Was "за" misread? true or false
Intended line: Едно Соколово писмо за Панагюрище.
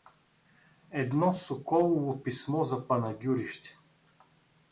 false